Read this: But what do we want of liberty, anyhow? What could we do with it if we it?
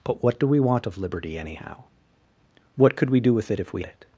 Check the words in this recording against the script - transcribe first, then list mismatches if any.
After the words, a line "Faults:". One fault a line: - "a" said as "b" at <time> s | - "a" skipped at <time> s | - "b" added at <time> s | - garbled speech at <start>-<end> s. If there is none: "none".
But what do we want of liberty, anyhow? What could we do with it if we it?
Faults:
none